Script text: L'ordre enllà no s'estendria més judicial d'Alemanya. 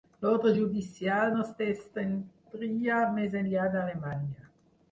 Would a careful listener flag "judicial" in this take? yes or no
yes